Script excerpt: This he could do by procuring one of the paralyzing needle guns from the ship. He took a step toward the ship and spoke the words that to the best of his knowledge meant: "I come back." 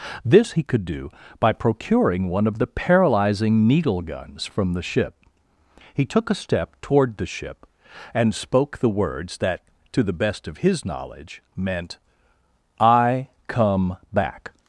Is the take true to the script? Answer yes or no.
yes